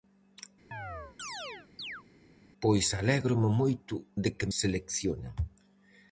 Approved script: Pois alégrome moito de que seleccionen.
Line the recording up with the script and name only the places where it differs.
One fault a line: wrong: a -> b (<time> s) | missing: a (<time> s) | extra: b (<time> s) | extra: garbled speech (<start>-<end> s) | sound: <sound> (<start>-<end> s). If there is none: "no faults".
sound: chirp (0.7-2.0 s)